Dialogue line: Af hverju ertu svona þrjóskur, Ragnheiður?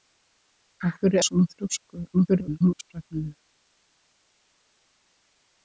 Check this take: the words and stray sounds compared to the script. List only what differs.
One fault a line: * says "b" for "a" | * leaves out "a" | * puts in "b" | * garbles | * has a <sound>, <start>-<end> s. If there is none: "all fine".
* leaves out "ertu"
* garbles